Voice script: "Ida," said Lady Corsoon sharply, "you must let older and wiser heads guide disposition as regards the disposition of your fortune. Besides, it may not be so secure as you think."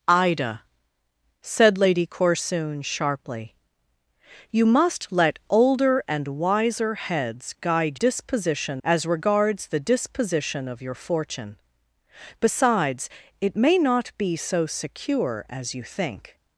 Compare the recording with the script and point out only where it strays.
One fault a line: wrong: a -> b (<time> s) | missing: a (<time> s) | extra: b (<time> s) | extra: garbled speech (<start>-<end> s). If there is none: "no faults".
no faults